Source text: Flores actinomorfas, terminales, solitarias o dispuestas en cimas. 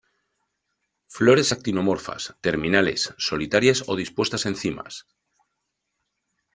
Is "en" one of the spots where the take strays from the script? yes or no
no